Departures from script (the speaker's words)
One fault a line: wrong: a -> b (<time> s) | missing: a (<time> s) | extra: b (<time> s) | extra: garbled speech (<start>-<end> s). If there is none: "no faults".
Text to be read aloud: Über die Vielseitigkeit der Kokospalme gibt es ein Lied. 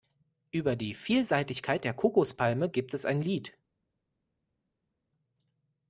no faults